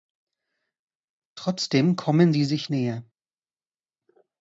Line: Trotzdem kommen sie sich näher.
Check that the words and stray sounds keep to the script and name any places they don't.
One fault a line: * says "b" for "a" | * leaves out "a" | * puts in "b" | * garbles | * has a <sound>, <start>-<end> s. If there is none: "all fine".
all fine